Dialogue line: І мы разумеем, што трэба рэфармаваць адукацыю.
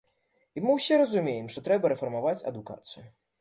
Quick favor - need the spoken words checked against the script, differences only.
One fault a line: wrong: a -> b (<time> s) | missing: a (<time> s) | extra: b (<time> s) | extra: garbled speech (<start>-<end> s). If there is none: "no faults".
extra: ўсе (0.8 s)